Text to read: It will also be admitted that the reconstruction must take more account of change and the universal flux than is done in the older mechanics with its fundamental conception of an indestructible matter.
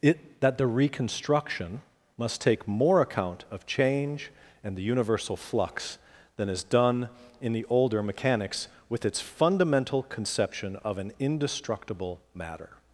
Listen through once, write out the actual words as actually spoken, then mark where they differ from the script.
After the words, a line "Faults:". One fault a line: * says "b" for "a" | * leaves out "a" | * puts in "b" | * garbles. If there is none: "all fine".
It that the reconstruction must take more account of change and the universal flux than is done in the older mechanics with its fundamental conception of an indestructible matter.
Faults:
* leaves out "will also be admitted"